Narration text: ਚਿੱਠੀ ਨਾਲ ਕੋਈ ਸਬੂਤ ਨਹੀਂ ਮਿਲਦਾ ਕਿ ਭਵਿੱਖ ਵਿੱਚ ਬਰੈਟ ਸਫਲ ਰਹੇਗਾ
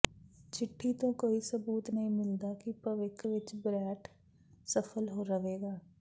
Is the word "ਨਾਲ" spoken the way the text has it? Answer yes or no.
no